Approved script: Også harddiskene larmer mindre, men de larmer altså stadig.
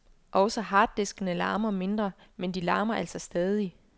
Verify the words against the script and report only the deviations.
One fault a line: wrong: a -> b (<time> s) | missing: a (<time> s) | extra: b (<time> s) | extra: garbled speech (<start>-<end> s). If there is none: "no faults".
no faults